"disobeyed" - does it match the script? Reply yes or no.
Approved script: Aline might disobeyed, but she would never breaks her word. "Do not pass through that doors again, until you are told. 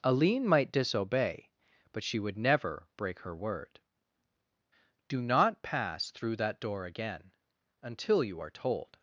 no